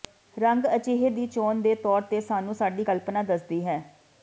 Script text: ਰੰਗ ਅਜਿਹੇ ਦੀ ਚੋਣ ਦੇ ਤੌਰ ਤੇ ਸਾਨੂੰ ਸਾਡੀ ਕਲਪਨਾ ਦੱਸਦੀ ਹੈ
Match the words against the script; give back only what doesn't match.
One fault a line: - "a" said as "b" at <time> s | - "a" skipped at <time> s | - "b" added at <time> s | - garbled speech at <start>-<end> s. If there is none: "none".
none